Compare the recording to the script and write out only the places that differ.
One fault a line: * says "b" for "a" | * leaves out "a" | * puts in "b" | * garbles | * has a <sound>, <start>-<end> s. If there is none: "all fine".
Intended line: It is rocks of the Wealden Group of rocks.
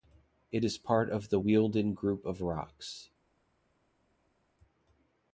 * says "part" for "rocks"